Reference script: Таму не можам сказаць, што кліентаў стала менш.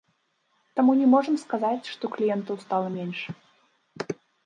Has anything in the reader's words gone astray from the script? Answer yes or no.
no